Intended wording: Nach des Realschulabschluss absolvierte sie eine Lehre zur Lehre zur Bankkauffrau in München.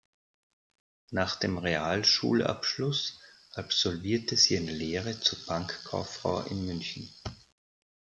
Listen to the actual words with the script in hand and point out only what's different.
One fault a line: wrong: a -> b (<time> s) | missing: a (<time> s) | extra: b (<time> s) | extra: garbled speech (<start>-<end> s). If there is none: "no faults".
wrong: des -> dem (1.4 s)
missing: Lehre zur (5.4 s)